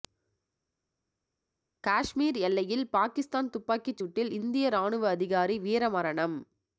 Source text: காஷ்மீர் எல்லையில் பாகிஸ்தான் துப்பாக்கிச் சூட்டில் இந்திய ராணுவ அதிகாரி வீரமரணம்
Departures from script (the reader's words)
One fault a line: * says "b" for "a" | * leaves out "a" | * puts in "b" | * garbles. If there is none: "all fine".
all fine